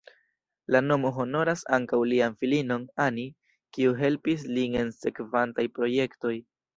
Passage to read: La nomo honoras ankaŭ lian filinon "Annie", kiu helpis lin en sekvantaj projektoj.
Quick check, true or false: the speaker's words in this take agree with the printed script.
true